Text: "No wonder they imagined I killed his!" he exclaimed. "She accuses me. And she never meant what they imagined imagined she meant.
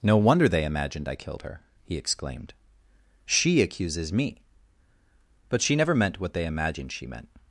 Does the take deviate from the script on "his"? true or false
true